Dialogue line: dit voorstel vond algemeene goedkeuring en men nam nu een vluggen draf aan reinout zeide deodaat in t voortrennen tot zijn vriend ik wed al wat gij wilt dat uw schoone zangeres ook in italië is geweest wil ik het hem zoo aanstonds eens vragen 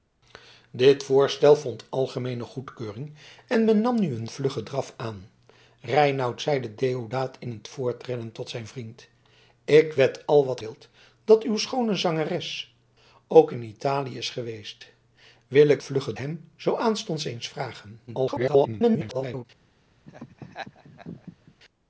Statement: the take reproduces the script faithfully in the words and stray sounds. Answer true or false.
false